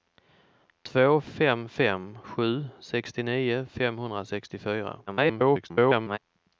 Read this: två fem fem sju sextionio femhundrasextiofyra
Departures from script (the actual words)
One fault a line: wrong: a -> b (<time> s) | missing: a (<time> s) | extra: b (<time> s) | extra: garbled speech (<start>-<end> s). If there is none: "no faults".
extra: garbled speech (5.1-6.2 s)